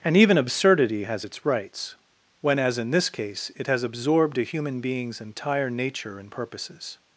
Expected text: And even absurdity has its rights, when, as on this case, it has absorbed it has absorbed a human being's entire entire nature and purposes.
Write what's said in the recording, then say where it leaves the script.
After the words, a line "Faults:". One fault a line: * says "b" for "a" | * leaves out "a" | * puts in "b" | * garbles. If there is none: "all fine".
And even absurdity has its rights, when, as in this case, it has absorbed a human being's entire nature and purposes.
Faults:
* says "in" for "on"
* leaves out "it has absorbed"
* leaves out "entire"